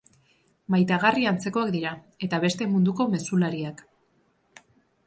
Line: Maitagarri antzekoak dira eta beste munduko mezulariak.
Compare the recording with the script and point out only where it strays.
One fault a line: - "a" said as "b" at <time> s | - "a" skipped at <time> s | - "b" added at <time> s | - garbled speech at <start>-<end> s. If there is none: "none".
none